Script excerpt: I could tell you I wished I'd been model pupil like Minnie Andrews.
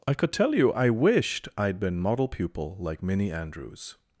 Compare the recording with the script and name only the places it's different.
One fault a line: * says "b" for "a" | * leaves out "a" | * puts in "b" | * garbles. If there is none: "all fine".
all fine